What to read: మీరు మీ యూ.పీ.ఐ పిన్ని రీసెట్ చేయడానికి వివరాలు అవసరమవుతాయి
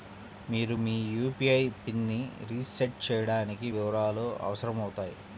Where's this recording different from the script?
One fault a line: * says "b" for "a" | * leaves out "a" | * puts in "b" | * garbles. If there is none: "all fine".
all fine